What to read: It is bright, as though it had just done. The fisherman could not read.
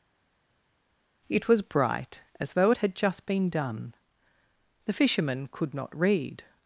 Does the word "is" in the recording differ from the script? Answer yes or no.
yes